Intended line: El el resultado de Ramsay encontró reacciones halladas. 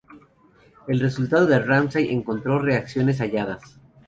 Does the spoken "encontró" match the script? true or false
true